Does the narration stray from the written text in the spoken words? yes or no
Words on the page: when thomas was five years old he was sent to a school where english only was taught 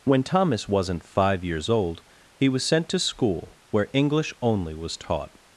yes